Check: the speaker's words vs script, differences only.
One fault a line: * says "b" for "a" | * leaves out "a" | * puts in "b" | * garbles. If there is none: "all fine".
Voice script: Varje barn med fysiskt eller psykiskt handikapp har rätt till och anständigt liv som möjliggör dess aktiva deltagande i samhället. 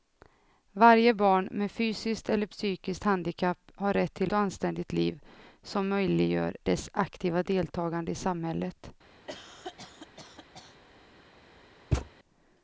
all fine